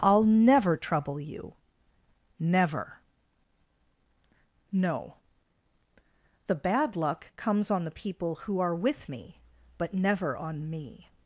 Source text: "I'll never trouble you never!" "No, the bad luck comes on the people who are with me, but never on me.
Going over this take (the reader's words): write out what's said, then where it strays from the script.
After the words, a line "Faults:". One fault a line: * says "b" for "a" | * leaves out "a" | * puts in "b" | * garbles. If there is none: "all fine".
"I'll never trouble you never!" "No, the bad luck comes on the people who are with me, but never on me.
Faults:
all fine